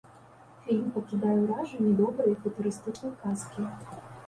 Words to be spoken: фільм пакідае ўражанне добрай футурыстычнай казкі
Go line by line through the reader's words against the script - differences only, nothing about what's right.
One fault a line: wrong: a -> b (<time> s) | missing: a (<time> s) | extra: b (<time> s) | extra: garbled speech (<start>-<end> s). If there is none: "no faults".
no faults